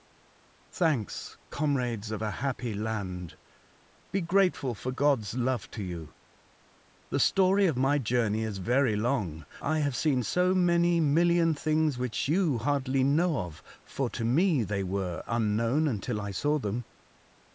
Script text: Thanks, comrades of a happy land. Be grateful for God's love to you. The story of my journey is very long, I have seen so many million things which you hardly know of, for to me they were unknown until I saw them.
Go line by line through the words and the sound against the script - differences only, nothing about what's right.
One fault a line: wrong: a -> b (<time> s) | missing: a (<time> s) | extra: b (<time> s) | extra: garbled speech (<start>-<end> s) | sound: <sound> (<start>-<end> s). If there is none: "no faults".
no faults